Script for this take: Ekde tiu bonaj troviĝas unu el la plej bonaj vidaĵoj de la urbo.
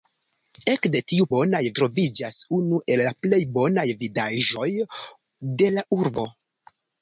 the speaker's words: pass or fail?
pass